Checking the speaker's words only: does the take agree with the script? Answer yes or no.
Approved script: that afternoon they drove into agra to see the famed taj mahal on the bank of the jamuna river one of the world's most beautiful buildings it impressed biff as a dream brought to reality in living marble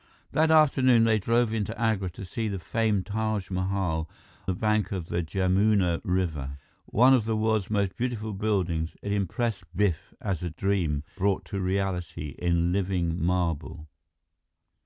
no